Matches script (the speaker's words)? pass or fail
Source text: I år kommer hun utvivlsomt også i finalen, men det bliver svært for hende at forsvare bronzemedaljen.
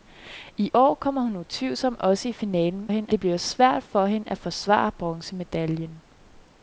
fail